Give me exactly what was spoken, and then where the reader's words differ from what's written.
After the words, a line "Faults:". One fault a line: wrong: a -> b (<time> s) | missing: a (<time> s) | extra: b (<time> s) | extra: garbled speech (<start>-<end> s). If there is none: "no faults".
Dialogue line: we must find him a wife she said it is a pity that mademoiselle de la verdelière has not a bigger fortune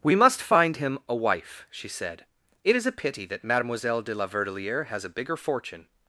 we must find him a wife she said it is a pity that mademoiselle de la verdelière has a bigger fortune
Faults:
missing: not (5.0 s)